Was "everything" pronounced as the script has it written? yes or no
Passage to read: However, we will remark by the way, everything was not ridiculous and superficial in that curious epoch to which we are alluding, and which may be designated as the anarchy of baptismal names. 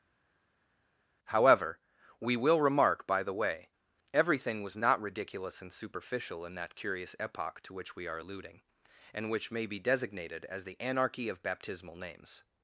yes